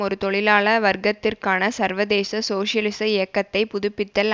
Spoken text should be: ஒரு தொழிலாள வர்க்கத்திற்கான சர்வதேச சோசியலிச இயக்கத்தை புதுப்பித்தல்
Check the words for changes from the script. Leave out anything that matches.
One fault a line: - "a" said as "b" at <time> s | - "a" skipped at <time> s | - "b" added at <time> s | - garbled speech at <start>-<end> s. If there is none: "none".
none